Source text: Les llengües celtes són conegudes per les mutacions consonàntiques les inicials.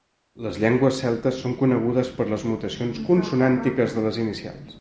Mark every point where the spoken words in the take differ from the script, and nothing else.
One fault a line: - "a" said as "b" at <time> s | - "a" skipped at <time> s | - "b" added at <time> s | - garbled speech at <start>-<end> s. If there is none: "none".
- "de" added at 4.0 s